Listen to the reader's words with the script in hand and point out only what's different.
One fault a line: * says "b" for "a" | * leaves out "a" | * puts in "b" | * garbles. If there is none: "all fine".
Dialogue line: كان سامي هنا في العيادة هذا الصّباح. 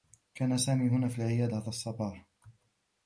all fine